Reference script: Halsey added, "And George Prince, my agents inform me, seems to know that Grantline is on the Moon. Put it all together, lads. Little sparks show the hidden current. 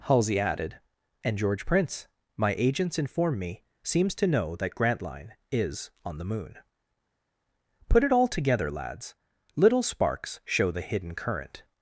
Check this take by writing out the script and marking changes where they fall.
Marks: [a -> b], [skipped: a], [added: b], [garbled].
Halsey added, "And George Prince, my agents inform me, seems to know that Grantline is on the Moon. Put it all together, lads. Little sparks show the hidden current.